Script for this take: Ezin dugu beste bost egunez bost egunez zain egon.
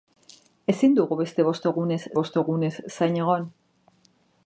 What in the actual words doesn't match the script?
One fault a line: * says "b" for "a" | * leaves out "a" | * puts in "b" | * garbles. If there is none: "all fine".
all fine